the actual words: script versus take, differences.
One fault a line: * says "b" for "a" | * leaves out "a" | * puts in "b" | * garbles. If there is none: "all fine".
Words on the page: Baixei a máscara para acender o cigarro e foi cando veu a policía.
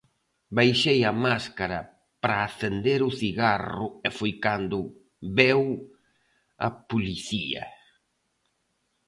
all fine